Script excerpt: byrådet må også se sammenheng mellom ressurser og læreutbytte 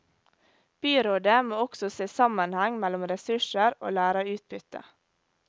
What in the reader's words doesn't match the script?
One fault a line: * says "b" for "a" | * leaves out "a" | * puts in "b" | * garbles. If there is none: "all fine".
all fine